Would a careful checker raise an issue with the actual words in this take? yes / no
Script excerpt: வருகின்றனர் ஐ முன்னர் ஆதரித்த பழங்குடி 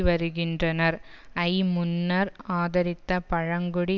no